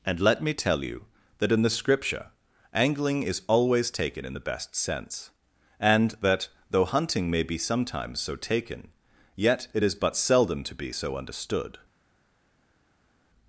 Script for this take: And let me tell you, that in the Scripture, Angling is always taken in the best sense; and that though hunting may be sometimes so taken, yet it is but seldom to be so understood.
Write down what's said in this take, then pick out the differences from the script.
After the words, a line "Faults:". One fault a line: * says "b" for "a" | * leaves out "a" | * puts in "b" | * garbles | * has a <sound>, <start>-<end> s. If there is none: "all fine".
And let me tell you, that in the Scripture, Angling is always taken in the best sense; and that though hunting may be sometimes so taken, yet it is but seldom to be so understood.
Faults:
all fine